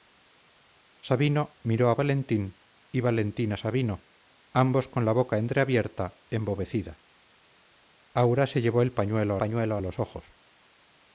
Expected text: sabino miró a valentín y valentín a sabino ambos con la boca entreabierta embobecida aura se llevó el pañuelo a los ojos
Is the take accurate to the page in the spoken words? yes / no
no